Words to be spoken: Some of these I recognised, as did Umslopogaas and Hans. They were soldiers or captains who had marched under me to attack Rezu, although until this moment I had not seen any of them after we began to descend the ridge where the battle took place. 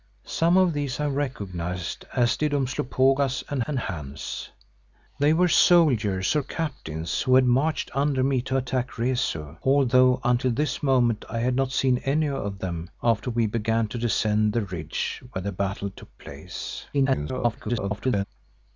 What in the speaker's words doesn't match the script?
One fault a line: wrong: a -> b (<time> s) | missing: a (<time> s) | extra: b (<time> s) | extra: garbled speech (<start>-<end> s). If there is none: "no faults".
extra: and (3.7 s)
extra: garbled speech (16.9-18.2 s)